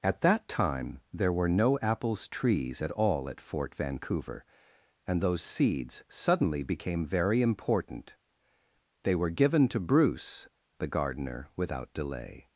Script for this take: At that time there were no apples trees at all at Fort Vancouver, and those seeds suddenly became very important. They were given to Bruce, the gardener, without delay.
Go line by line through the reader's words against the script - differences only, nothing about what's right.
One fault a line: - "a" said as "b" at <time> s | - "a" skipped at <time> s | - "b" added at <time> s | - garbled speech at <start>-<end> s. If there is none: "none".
none